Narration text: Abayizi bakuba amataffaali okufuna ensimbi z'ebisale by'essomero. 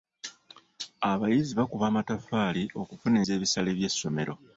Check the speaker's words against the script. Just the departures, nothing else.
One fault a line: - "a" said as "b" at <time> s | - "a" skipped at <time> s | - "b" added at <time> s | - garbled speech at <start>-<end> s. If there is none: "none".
- "ensimbi" skipped at 3.2 s